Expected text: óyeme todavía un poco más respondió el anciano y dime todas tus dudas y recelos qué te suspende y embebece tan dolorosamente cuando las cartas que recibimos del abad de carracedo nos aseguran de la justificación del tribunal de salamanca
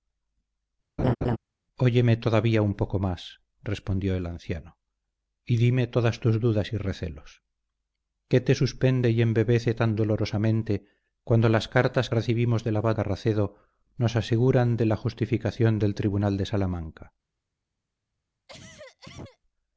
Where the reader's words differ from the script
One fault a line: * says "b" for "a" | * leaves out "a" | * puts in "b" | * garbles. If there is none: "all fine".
* leaves out "que"
* leaves out "de"